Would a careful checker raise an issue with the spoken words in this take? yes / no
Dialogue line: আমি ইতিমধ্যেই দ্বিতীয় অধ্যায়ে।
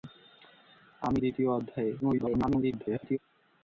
yes